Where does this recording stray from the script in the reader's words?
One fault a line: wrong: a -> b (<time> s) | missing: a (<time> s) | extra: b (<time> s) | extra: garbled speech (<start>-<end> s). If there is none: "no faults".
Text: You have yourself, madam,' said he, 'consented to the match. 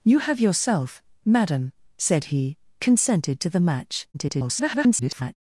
extra: garbled speech (4.1-5.4 s)